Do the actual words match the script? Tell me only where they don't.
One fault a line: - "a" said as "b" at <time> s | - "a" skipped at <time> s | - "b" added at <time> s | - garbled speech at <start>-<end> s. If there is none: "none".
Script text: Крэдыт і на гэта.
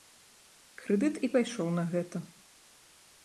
- "пайшоў" added at 1.3 s